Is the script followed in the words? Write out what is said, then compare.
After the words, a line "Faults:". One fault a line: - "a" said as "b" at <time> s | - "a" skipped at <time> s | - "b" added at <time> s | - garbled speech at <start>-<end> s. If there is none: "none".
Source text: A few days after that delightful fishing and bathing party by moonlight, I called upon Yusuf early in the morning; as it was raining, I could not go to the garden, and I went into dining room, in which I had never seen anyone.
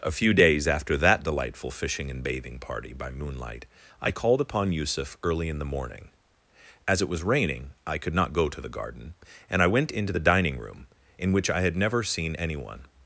A few days after that delightful fishing and bathing party by moonlight, I called upon Yusuf early in the morning; as it was raining, I could not go to the garden, and I went into the dining room, in which I had never seen anyone.
Faults:
- "the" added at 10.1 s